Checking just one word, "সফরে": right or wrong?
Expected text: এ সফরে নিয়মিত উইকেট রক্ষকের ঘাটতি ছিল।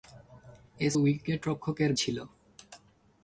wrong